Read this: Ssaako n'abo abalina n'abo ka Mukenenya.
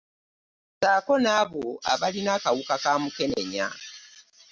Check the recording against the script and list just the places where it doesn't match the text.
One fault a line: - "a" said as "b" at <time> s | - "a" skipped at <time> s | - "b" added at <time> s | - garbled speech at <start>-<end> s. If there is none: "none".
- "n'abo" said as "akawuka" at 2.4 s